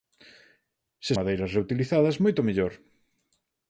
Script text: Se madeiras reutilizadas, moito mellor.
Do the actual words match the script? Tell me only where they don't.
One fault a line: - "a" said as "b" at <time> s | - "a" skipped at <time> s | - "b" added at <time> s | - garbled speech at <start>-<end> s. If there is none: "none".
none